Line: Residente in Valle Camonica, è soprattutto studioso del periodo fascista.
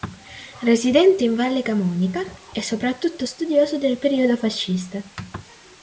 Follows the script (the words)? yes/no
yes